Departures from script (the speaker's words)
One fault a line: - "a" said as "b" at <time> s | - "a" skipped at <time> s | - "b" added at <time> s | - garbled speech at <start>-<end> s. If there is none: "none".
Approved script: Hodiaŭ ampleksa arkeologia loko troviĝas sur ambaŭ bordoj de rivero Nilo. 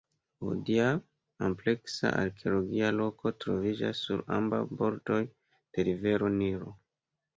none